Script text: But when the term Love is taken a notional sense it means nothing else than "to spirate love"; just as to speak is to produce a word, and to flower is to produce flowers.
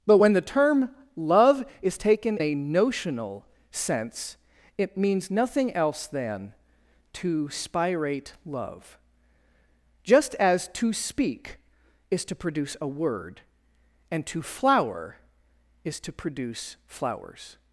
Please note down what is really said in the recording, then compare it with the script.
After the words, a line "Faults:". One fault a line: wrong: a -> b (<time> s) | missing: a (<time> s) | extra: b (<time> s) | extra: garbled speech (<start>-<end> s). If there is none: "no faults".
But when the term Love is taken a notional sense it means nothing else than "to spirate love"; just as to speak is to produce a word, and to flower is to produce flowers.
Faults:
no faults